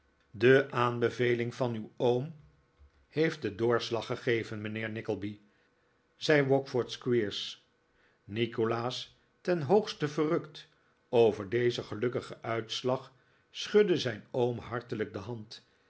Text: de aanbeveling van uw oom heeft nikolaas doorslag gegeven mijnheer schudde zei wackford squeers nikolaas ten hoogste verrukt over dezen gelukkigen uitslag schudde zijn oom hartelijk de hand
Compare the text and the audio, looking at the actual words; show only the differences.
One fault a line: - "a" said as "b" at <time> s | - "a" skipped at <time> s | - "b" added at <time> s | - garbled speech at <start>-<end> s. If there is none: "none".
- "nikolaas" said as "den" at 3.4 s
- "schudde" said as "nickleby" at 4.9 s